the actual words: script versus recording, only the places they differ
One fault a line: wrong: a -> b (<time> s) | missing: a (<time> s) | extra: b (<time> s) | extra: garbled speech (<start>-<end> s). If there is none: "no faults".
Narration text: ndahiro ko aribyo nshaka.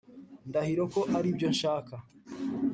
no faults